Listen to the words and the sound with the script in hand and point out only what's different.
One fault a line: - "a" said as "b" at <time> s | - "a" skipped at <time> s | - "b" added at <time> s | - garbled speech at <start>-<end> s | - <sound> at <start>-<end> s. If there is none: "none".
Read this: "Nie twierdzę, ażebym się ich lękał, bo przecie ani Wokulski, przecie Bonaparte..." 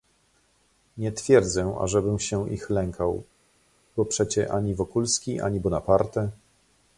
- "przecie" said as "ani" at 5.4 s